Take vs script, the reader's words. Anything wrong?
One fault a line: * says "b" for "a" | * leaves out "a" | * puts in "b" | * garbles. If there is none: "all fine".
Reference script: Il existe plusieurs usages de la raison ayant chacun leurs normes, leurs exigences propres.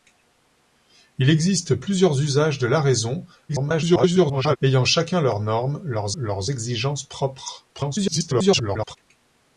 * garbles
* puts in "leurs"
* garbles